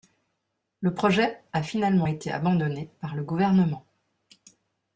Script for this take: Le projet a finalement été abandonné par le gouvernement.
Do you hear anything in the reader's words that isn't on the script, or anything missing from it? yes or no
no